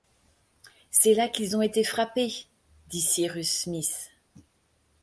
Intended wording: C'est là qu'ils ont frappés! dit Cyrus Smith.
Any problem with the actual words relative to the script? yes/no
yes